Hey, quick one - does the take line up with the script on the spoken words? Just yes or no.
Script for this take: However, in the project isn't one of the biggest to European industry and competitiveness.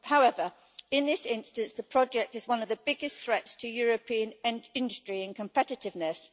no